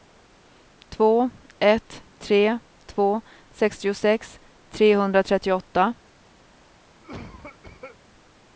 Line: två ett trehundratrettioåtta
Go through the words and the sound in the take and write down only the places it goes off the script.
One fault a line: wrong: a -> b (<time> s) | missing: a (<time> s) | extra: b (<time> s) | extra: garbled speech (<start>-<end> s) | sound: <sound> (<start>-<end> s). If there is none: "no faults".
extra: tre två sextiosex (2.2 s)
sound: cough (7.0-8.0 s)